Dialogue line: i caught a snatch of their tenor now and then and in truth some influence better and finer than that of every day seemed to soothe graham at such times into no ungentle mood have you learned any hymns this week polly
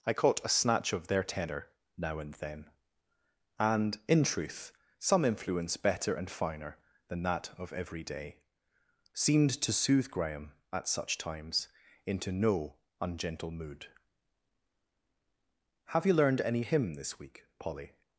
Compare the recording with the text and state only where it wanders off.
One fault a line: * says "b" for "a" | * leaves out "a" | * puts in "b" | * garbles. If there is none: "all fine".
* says "hymn" for "hymns"